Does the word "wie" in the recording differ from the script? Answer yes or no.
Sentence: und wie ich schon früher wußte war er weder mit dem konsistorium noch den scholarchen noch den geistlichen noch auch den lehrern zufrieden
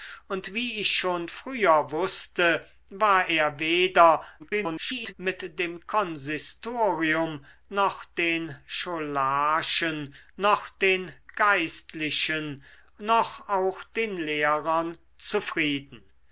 no